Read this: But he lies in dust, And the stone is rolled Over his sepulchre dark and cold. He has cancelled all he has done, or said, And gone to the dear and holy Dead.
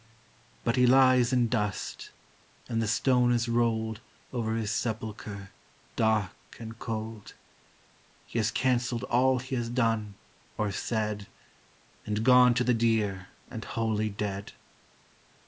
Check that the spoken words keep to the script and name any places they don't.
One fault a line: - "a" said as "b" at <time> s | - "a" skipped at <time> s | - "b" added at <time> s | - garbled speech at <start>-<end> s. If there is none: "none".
none